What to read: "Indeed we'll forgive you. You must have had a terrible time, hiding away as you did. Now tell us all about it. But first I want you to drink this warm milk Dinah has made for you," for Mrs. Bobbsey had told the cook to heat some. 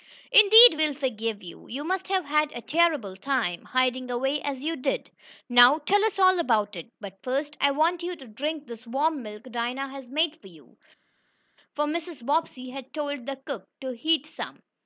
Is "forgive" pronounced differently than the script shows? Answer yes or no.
no